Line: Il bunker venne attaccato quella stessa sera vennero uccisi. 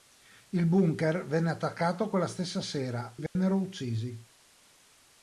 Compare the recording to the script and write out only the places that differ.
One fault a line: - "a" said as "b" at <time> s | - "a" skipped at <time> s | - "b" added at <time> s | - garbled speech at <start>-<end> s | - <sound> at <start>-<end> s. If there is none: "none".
- dropout at 3.3-3.4 s